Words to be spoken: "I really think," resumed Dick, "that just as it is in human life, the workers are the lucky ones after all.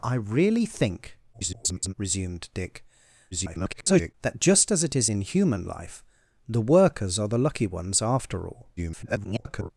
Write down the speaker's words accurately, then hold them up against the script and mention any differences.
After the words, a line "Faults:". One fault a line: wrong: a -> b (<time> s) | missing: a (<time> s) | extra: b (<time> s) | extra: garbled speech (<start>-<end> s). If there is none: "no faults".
"I really think," [garbled] resumed Dick, [garbled] "that just as it is in human life, the workers are the lucky ones after all. [garbled]
Faults:
extra: garbled speech (1.3-1.9 s)
extra: garbled speech (3.3-4.1 s)
extra: garbled speech (8.8-9.7 s)